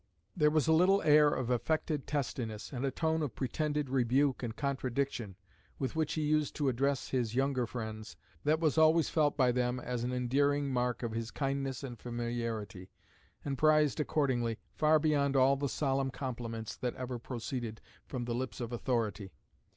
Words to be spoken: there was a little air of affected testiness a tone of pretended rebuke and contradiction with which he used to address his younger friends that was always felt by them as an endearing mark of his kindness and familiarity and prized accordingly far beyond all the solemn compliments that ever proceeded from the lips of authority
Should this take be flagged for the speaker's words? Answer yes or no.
yes